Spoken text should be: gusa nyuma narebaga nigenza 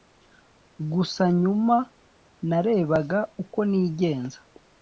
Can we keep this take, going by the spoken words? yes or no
no